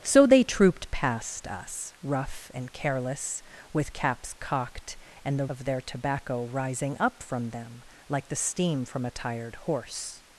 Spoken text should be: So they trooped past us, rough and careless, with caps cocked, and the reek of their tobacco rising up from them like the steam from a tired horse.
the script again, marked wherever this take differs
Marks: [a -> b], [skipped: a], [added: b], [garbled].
So they trooped past us, rough and careless, with caps cocked, and the [skipped: reek] of their tobacco rising up from them like the steam from a tired horse.